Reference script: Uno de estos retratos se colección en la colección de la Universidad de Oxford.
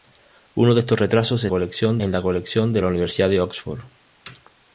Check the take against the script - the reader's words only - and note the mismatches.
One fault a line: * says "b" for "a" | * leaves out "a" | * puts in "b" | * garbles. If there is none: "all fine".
all fine